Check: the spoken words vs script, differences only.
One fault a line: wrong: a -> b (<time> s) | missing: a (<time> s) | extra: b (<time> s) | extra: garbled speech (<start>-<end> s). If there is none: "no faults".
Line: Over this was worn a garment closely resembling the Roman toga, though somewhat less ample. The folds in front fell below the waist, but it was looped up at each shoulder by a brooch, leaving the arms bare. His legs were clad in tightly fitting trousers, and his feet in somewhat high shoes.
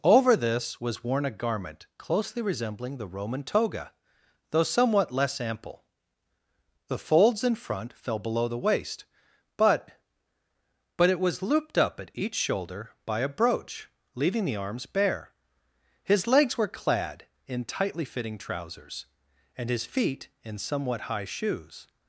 extra: but (11.0 s)